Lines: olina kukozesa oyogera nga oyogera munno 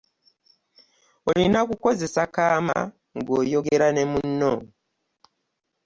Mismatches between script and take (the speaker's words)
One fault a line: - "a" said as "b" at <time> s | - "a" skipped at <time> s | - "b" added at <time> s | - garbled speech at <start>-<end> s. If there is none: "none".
- "oyogera" said as "kaama" at 2.4 s
- "ne" added at 3.9 s